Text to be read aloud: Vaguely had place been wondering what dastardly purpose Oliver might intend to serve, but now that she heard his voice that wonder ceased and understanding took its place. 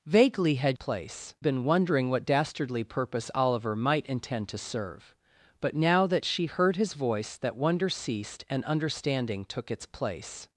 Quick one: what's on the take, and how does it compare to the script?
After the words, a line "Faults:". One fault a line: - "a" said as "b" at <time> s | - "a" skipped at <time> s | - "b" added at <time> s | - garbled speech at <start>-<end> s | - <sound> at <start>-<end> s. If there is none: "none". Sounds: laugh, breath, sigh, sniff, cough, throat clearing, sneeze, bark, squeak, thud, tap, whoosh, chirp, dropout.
Vaguely had place been wondering what dastardly purpose Oliver might intend to serve, but now that she heard his voice that wonder ceased and understanding took its place.
Faults:
none